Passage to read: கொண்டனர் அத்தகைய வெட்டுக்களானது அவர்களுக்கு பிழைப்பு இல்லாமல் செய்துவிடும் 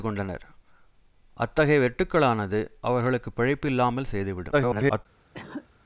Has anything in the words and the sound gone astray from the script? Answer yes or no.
yes